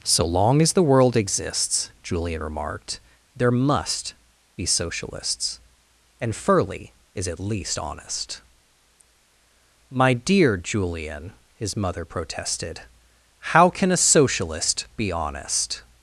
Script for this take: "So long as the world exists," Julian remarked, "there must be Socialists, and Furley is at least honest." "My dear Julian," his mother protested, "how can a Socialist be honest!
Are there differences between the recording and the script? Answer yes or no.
no